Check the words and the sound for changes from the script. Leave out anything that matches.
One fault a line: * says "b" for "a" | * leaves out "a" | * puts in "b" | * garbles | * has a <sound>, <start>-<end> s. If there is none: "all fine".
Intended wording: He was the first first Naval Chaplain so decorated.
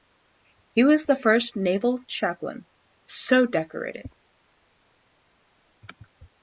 * leaves out "first"